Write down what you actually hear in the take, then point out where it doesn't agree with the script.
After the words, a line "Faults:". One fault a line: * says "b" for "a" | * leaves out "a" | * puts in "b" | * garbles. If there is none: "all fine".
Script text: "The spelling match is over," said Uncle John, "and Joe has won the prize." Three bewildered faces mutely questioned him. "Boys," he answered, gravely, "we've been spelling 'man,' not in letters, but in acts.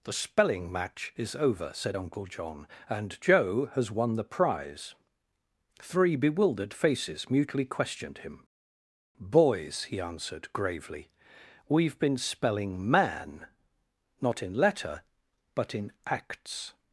"The spelling match is over," said Uncle John, "and Joe has won the prize." Three bewildered faces mutely questioned him. "Boys," he answered, gravely, "we've been spelling 'man,' not in letter, but in acts.
Faults:
* says "letter" for "letters"